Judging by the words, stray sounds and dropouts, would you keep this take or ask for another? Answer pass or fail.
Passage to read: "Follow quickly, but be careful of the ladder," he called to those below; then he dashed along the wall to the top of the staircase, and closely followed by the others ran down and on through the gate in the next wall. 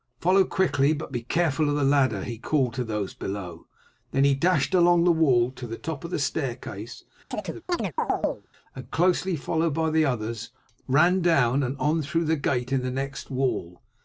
fail